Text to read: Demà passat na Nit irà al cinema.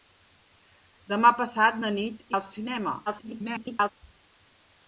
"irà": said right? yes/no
no